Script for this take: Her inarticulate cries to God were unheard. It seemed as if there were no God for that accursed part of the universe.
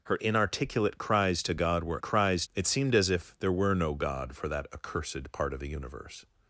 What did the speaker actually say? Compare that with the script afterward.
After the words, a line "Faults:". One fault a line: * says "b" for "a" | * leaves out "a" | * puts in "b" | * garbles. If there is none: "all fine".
Her inarticulate cries to God were cries. It seemed as if there were no God for that accursed part of the universe.
Faults:
* says "cries" for "unheard"